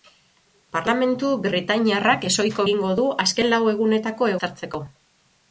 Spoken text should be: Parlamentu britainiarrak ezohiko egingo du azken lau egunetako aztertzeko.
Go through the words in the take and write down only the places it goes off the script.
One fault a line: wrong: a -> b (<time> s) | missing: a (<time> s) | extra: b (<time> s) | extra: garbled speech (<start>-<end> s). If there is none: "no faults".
no faults